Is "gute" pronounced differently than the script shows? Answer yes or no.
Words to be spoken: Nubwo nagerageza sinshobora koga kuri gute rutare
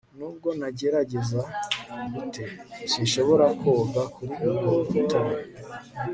yes